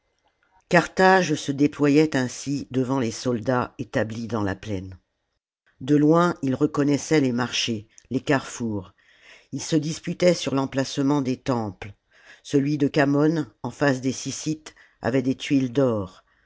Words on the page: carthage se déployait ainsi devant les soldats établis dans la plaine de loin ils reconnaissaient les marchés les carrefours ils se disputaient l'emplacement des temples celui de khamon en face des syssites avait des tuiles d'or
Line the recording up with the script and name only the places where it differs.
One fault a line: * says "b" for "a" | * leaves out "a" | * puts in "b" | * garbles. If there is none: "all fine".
* puts in "sur"